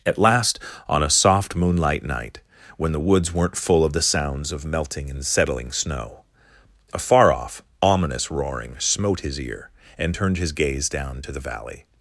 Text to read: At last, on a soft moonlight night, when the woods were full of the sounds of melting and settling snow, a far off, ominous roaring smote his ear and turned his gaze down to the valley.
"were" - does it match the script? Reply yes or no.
no